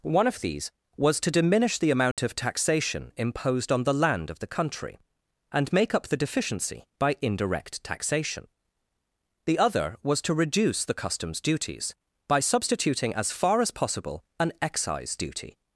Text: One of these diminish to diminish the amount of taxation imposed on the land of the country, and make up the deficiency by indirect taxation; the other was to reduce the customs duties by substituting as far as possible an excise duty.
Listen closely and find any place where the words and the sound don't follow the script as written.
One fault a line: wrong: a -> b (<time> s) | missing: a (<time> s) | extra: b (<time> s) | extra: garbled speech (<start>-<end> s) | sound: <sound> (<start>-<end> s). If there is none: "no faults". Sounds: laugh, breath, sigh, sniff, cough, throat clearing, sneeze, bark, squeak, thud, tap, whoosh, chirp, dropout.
wrong: diminish -> was (1.0 s)
sound: dropout (2.1-2.2 s)